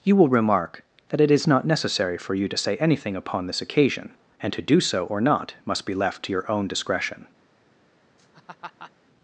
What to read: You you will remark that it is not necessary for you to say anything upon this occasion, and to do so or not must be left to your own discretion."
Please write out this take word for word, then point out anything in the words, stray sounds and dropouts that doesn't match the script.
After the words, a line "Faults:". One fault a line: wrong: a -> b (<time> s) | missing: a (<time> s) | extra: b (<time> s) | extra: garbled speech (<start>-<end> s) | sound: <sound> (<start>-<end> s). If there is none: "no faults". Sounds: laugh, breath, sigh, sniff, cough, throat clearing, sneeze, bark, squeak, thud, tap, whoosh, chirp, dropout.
You will remark that it is not necessary for you to say anything upon this occasion, and to do so or not must be left to your own discretion."
Faults:
missing: you (0.1 s)
sound: laugh (8.2-8.9 s)